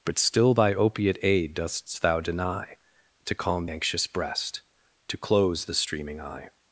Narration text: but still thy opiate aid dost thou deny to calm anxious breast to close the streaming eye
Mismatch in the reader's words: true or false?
false